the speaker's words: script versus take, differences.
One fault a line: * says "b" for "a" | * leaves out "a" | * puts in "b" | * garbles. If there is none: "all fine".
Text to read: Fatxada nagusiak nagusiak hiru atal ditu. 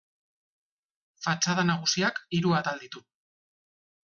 * leaves out "nagusiak"